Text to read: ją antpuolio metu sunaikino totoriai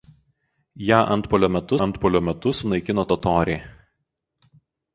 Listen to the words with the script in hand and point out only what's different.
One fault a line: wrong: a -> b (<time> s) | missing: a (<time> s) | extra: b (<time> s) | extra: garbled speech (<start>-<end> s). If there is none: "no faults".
extra: antpuolio metu (1.9 s)